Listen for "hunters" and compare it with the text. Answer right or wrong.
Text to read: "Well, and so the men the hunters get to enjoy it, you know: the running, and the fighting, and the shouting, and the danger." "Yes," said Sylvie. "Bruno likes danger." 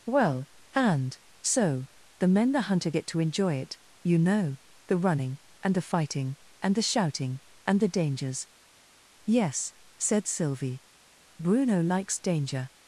wrong